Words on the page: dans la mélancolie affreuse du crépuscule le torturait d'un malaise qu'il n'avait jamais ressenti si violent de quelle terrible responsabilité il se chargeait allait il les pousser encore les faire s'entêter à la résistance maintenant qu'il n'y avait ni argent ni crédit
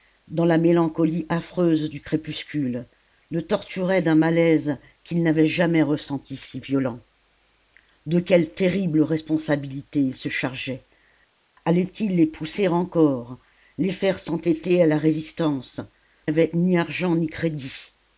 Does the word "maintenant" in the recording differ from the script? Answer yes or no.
yes